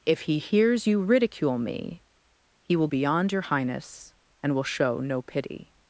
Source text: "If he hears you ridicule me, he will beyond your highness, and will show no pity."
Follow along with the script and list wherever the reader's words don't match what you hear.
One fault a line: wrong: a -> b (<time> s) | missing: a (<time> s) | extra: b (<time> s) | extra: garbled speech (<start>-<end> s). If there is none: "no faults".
no faults